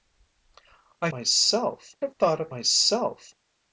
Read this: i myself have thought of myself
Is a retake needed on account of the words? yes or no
no